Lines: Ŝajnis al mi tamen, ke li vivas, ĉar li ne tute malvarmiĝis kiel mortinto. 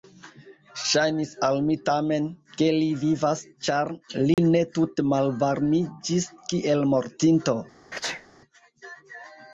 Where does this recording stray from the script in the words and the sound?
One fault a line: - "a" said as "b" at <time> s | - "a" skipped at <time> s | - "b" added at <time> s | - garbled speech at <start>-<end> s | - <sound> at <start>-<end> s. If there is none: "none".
- dropout at 4.3-4.4 s
- sneeze at 7.9-8.3 s